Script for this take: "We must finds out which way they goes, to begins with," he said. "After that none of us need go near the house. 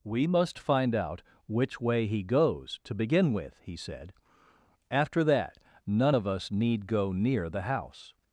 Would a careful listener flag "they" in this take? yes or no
yes